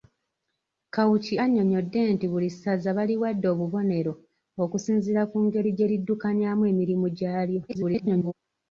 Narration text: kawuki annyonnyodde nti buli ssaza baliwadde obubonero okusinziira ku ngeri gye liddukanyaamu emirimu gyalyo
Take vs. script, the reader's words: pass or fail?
fail